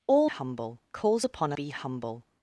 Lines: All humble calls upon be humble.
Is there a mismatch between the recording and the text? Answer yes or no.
no